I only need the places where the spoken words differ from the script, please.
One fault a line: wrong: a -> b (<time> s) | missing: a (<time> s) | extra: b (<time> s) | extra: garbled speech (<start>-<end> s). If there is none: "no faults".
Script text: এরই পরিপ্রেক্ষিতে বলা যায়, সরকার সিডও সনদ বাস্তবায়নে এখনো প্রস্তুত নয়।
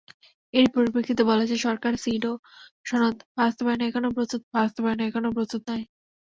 extra: বাস্তবায়নে এখনো প্রস্তুত (4.5 s)